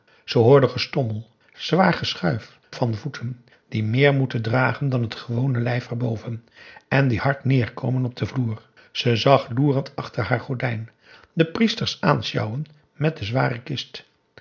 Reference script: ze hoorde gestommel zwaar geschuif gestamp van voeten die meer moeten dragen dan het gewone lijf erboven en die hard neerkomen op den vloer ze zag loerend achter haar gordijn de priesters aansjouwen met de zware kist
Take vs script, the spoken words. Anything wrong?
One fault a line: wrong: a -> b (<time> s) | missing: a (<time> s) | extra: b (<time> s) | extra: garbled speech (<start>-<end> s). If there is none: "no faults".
missing: gestamp (2.6 s)